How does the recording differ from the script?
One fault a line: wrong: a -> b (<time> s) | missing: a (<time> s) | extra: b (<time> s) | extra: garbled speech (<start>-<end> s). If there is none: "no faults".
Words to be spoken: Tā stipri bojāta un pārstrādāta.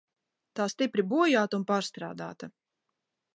no faults